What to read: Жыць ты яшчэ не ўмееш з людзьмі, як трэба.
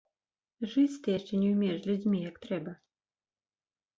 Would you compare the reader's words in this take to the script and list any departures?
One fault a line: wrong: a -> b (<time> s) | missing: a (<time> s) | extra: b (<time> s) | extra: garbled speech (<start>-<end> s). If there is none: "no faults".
no faults